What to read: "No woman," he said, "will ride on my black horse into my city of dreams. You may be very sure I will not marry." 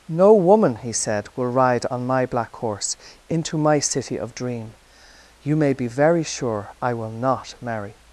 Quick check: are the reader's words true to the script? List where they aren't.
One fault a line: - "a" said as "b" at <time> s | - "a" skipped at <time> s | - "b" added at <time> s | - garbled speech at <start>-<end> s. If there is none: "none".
- "dreams" said as "dream" at 4.3 s